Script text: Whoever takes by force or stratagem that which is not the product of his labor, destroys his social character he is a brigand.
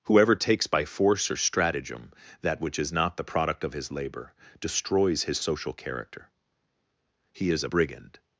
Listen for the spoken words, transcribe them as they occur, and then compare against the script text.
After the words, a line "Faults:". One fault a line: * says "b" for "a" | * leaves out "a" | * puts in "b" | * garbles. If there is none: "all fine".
Whoever takes by force or stratagem that which is not the product of his labor, destroys his social character he is a brigand.
Faults:
all fine